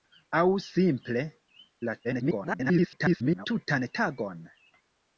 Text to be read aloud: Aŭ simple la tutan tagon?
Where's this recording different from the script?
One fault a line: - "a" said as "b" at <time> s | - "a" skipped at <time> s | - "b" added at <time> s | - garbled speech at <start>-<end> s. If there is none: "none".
- garbled speech at 2.0-3.5 s